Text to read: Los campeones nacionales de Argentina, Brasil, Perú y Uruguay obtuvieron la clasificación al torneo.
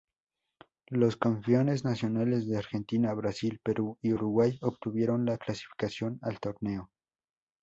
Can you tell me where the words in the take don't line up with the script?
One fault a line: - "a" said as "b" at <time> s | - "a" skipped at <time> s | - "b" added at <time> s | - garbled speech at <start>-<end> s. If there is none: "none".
none